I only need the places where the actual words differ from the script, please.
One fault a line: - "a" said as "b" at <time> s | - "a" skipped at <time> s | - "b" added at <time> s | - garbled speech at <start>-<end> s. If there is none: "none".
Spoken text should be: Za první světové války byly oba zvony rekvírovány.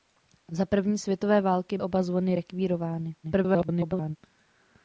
- "byly" skipped at 1.8 s
- garbled speech at 3.2-4.2 s